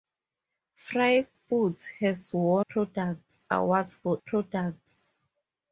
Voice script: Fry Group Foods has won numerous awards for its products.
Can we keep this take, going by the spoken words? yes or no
no